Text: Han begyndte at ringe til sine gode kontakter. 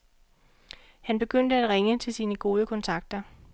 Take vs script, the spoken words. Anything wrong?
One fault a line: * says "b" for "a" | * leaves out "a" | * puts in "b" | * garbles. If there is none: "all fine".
all fine